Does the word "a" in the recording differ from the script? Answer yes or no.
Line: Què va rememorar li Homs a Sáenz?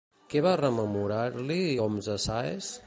no